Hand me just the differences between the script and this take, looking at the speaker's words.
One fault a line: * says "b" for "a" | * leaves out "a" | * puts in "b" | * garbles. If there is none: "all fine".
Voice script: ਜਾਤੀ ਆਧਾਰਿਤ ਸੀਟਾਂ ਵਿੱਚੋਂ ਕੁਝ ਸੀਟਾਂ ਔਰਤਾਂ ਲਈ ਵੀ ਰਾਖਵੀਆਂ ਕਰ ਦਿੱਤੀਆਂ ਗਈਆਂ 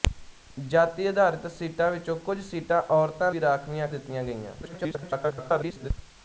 * leaves out "ਲਈ"
* leaves out "ਕਰ"
* garbles